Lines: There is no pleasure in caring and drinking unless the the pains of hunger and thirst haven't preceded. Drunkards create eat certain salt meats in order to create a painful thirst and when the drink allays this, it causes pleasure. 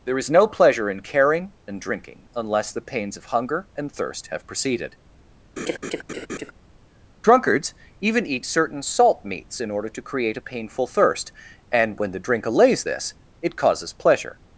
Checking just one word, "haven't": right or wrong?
wrong